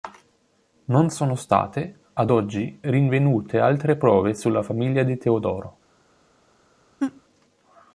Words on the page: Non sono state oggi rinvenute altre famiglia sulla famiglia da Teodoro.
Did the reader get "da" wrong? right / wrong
wrong